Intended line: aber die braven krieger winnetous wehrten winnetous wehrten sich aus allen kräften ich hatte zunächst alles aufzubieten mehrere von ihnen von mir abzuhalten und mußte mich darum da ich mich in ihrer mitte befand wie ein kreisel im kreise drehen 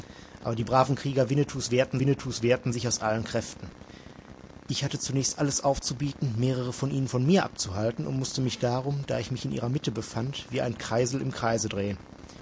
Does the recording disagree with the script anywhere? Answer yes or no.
no